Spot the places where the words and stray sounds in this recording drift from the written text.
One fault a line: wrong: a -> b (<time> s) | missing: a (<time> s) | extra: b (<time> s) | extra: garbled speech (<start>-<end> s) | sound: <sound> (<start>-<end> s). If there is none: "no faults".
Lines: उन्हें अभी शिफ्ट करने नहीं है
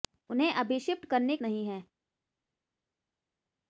no faults